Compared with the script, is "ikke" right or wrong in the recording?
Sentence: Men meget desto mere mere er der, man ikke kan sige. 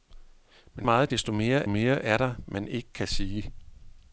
right